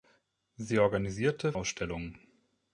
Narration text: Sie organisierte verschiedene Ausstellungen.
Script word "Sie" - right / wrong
right